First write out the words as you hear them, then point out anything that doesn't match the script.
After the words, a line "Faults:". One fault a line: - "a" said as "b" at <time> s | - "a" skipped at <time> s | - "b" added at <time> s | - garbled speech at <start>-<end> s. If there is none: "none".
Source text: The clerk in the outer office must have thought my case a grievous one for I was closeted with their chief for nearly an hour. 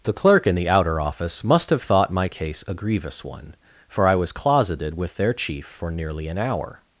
The clerk in the outer office must have thought my case a grievous one for I was closeted with their chief for nearly an hour.
Faults:
none